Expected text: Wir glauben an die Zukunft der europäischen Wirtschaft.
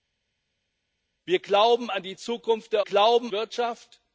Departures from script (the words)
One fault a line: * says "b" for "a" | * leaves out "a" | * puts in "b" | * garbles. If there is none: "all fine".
* says "glauben" for "europäischen"